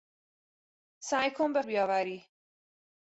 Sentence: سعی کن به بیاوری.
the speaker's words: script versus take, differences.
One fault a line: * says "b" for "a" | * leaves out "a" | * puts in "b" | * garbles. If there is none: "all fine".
all fine